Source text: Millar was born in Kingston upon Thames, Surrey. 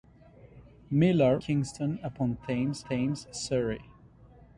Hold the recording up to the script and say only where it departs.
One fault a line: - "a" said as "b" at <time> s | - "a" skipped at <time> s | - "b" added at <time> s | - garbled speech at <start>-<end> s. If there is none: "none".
- "was born in" skipped at 1.4 s
- "Thames" added at 2.9 s